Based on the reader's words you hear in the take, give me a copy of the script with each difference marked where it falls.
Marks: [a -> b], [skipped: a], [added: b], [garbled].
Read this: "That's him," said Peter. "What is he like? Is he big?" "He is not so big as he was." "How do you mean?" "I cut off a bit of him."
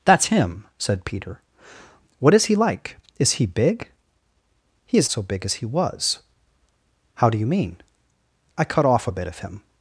"That's him," said Peter. "What is he like? Is he big?" "He is [skipped: not] so big as he was." "How do you mean?" "I cut off a bit of him."